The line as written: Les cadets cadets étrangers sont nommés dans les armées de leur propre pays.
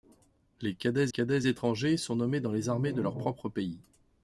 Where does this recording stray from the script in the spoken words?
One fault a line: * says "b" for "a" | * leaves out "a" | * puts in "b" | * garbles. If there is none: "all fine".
all fine